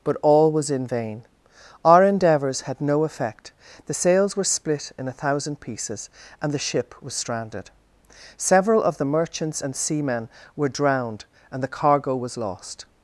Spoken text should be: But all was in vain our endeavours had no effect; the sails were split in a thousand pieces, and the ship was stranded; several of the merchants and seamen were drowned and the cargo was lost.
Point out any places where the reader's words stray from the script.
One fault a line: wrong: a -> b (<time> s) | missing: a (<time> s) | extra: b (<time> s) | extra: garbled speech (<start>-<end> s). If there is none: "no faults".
no faults